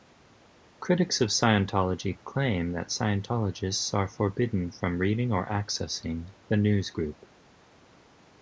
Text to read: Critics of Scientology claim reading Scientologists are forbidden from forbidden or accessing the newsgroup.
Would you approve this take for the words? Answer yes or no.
no